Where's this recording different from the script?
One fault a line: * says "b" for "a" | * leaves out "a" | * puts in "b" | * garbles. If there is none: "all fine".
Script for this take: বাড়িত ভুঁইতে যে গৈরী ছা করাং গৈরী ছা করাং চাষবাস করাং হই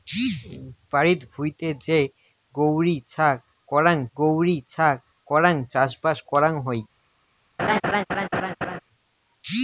all fine